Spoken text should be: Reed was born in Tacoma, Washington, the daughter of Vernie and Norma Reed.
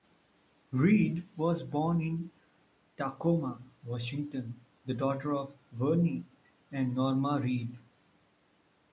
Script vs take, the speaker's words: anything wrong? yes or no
no